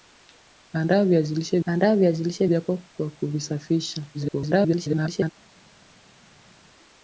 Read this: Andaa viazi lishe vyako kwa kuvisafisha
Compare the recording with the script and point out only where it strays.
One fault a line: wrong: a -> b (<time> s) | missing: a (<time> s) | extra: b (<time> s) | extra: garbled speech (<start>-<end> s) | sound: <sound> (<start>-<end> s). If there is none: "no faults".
extra: andaa viazi lishe (1.7 s)
extra: garbled speech (4.1-5.3 s)